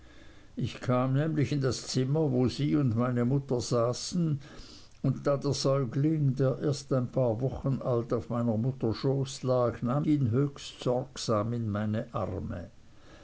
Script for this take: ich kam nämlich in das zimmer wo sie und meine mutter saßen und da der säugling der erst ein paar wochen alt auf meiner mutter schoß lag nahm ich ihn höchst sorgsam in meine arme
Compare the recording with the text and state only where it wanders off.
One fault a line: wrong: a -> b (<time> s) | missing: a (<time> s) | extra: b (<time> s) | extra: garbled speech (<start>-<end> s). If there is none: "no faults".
missing: ich (10.1 s)